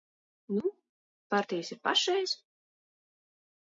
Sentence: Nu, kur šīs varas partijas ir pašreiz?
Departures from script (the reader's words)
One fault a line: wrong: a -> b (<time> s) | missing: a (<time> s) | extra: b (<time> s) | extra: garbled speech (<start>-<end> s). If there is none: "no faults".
missing: kur šīs varas (0.7 s)